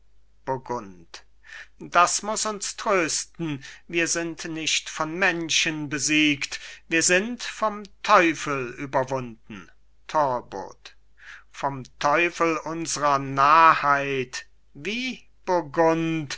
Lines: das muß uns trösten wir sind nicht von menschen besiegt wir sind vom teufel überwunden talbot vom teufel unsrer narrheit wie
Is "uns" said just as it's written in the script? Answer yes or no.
yes